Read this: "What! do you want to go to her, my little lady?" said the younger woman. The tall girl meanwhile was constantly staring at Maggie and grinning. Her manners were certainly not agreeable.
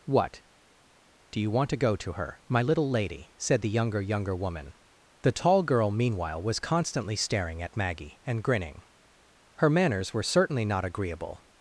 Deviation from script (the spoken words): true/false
true